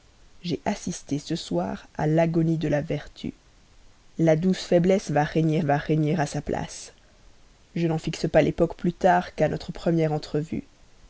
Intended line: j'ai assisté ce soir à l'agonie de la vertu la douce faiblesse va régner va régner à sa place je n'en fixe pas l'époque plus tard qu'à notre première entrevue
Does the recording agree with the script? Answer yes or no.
yes